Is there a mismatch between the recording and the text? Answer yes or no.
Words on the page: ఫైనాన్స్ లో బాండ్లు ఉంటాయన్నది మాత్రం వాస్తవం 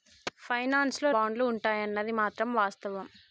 no